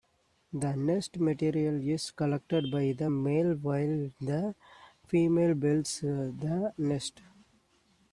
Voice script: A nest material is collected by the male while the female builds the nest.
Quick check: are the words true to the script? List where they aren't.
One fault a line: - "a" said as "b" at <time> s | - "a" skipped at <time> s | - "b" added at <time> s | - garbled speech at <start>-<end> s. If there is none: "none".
- "A" said as "The" at 0.5 s